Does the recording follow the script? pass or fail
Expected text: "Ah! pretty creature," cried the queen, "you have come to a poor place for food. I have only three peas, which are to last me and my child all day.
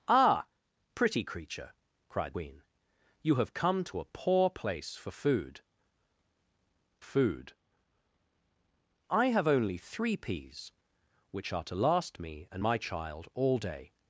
fail